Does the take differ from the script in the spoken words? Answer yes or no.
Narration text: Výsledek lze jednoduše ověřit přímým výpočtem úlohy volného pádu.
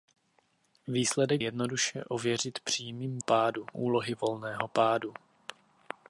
yes